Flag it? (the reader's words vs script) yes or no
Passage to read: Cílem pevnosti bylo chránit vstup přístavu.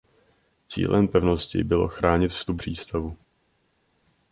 no